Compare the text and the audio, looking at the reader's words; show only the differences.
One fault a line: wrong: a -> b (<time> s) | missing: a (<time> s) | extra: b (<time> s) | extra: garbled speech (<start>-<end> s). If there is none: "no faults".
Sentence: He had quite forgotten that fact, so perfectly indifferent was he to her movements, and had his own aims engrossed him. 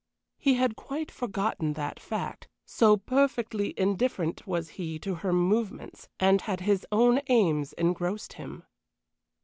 no faults